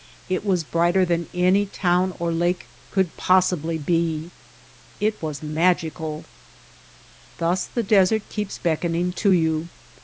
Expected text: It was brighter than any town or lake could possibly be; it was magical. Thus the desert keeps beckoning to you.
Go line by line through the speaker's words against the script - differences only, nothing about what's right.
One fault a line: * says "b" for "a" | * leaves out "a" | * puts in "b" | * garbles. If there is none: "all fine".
all fine